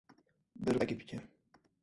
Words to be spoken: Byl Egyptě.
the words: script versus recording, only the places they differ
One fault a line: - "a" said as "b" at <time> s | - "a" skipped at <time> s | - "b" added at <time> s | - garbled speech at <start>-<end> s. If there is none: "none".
none